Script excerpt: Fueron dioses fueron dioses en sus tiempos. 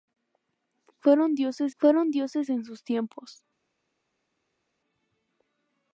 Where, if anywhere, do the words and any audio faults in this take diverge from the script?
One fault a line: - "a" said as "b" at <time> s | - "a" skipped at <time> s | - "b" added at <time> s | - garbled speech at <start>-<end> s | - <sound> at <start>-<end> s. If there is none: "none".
none